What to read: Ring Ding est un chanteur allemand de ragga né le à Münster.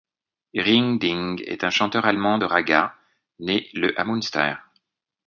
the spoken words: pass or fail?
pass